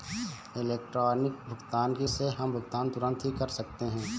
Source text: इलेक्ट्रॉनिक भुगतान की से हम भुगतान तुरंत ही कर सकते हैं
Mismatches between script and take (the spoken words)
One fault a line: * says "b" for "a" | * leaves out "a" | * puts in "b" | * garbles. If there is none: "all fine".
all fine